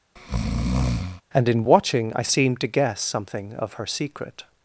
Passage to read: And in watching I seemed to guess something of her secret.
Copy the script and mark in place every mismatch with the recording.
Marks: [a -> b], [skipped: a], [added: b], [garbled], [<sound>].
[breath] And in watching I seemed to guess something of her secret.